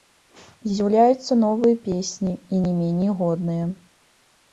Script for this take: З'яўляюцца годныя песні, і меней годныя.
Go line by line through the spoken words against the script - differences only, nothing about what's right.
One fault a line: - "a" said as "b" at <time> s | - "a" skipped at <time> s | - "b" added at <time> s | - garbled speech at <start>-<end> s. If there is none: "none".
- "годныя" said as "новыя" at 1.4 s
- "не" added at 2.6 s